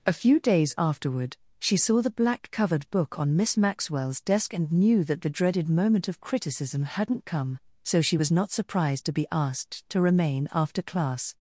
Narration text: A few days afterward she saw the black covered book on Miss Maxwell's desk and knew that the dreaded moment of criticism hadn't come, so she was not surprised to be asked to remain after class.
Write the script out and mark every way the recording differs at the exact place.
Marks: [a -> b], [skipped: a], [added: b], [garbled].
A few days afterward she saw the black covered book on Miss Maxwell's desk and knew that the dreaded moment of criticism hadn't come, so she was not surprised to be asked to remain after class.